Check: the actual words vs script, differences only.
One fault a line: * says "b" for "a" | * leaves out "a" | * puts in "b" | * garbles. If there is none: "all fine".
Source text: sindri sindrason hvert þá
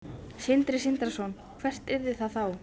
* puts in "yrði það"